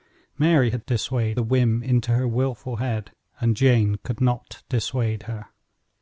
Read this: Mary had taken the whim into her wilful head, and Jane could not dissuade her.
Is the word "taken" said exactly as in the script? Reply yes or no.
no